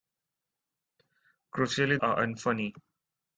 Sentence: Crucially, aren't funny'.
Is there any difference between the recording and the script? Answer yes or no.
no